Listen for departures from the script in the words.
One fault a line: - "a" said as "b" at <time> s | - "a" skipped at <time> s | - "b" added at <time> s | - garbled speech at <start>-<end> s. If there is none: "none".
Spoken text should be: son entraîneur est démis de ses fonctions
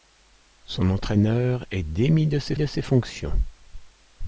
- "de ses" added at 2.5 s